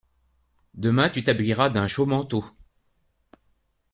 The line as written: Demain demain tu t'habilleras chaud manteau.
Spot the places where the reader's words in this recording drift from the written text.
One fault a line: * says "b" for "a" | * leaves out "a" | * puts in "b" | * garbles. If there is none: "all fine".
* leaves out "demain"
* puts in "d'un"